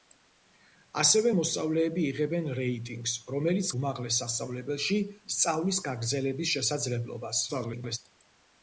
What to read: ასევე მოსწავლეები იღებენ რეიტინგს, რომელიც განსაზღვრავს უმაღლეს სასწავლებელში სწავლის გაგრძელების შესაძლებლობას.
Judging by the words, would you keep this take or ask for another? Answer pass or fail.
fail